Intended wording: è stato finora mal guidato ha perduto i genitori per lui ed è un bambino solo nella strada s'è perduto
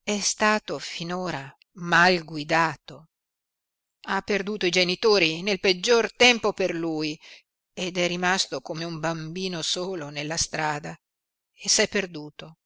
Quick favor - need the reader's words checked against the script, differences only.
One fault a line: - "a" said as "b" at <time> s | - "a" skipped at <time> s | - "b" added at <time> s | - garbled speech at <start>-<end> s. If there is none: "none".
- "nel peggior tempo" added at 5.4 s
- "rimasto come" added at 8.1 s
- "e" added at 11.5 s